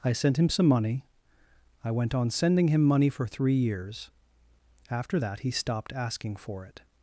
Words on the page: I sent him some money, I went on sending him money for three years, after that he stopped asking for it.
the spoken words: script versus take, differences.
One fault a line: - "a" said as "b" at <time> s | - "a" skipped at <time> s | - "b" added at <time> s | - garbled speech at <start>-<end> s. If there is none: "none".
none